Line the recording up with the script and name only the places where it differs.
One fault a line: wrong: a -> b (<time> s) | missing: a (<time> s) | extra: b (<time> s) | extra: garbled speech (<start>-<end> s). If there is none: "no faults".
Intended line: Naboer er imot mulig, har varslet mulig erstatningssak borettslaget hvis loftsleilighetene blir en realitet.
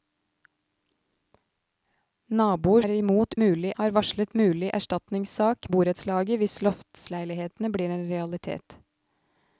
no faults